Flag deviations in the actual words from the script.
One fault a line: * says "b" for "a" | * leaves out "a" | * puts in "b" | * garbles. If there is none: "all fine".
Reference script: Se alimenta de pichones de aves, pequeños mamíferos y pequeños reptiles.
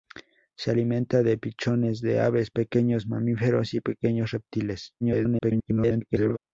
* garbles